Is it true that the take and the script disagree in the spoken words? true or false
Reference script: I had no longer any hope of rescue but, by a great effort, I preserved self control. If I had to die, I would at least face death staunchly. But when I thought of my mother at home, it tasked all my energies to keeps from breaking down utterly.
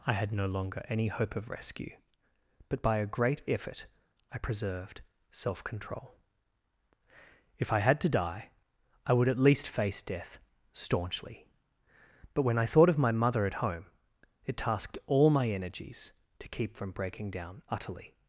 true